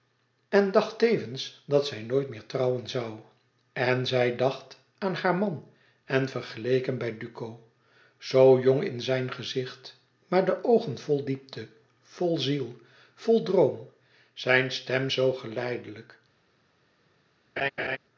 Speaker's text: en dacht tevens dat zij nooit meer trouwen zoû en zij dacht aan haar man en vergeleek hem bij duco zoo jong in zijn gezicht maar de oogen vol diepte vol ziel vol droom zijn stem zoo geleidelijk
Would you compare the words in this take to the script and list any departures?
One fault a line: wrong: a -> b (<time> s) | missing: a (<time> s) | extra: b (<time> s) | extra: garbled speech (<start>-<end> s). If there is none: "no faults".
no faults